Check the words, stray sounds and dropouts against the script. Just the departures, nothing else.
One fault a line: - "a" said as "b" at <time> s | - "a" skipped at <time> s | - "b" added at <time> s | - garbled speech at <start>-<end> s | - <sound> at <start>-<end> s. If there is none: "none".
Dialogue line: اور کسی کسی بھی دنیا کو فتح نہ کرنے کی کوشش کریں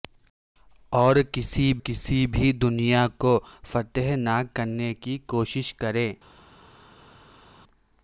none